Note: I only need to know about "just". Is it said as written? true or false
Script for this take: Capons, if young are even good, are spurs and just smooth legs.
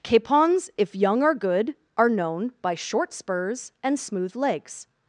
false